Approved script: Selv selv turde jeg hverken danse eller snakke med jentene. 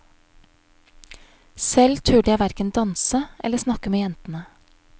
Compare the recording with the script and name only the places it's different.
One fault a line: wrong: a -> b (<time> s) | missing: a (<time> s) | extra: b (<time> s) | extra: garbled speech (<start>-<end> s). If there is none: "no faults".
missing: selv (2.0 s)